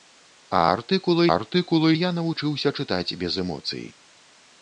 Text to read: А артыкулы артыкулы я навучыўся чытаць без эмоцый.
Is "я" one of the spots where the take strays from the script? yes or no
no